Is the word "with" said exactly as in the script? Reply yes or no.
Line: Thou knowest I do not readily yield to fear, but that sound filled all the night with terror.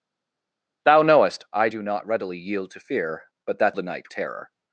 no